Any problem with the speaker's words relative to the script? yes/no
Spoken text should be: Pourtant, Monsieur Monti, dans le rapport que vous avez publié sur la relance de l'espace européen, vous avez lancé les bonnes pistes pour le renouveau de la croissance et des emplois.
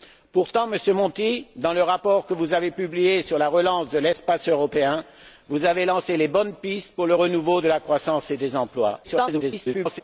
yes